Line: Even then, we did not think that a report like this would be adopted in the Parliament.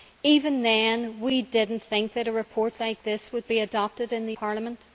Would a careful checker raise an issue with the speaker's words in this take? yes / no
no